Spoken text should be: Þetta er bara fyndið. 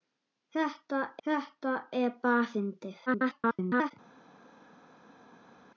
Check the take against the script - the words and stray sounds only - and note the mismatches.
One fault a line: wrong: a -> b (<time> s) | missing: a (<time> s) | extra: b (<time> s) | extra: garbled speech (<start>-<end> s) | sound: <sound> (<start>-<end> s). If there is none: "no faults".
extra: þetta (1.3 s)
extra: garbled speech (3.1-3.9 s)